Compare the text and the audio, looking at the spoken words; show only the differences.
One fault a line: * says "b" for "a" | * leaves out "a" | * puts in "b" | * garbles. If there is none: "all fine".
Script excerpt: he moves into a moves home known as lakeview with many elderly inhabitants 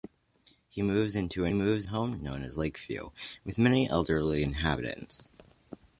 all fine